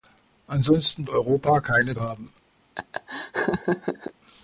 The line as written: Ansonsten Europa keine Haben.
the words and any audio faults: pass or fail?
fail